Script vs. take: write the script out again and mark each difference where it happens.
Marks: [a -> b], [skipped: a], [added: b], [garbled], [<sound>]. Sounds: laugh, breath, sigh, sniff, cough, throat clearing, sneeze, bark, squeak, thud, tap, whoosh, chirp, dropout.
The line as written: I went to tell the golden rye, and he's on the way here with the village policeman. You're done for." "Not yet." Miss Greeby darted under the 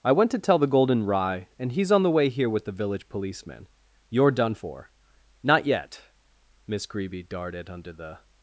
I went to tell the golden rye, and he's on the way here with the village policeman. You're done for." "Not yet." Miss Greeby darted under the